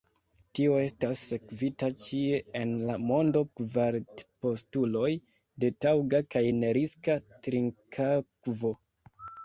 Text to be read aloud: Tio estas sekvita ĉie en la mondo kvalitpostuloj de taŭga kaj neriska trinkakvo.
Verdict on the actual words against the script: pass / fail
pass